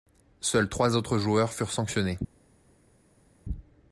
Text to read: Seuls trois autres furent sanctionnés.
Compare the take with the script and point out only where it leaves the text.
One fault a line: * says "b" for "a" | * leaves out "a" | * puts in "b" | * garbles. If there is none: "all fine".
* puts in "joueurs"